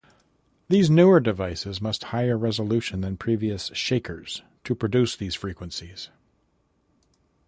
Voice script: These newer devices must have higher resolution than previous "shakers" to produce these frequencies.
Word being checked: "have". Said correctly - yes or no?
no